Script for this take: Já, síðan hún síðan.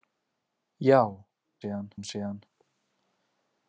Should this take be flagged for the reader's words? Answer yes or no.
no